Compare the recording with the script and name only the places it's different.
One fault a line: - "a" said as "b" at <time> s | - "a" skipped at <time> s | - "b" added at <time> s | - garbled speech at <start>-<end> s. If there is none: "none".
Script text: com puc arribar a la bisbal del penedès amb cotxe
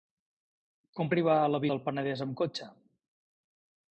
- "puc" skipped at 1.1 s
- "bisbal" skipped at 1.6 s